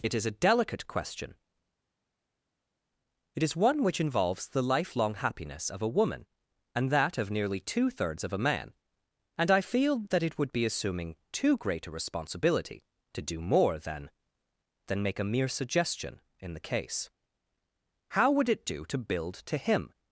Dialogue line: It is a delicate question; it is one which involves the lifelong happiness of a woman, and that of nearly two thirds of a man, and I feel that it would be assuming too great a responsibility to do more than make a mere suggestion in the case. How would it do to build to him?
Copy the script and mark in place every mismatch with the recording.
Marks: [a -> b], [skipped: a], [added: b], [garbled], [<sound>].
It is a delicate question; it is one which involves the lifelong happiness of a woman, and that of nearly two thirds of a man, and I feel that it would be assuming too great a responsibility to do more than [added: than] make a mere suggestion in the case. How would it do to build to him?